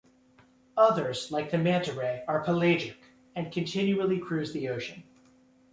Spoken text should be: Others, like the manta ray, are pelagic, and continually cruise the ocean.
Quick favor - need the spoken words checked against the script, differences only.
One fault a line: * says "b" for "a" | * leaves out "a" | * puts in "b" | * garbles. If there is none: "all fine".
all fine